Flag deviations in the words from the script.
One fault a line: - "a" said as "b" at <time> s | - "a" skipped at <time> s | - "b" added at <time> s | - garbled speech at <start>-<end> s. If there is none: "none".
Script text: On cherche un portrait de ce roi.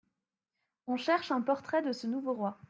- "nouveau" added at 2.1 s